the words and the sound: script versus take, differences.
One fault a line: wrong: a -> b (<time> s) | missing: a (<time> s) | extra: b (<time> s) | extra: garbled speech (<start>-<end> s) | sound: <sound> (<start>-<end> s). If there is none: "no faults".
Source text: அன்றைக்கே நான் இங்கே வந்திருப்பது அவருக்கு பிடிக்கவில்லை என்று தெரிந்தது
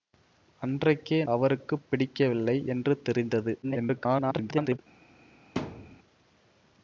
missing: நான் இங்கே வந்திருப்பது (1.2 s)
extra: garbled speech (3.6-4.8 s)
sound: thud (5.6-6.0 s)